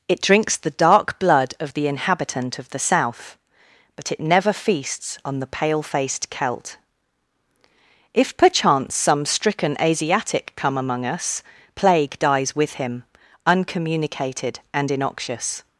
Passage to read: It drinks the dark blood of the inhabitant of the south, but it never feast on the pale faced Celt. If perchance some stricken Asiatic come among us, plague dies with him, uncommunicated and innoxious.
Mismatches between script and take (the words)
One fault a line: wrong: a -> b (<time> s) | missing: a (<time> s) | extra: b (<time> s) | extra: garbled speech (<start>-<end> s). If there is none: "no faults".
wrong: feast -> feasts (4.5 s)